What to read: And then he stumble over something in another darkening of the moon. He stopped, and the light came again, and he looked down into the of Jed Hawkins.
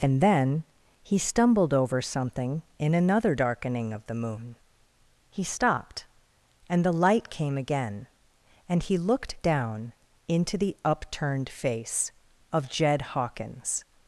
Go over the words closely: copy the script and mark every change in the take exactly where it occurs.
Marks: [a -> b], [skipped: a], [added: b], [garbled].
And then he [stumble -> stumbled] over something in another darkening of the moon. He stopped, and the light came again, and he looked down into the [added: upturned face] of Jed Hawkins.